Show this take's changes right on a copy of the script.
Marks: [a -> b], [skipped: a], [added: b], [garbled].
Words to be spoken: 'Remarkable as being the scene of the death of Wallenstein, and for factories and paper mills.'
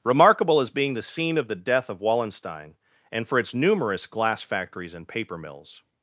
'Remarkable as being the scene of the death of Wallenstein, and for [added: its numerous glass] factories and paper mills.'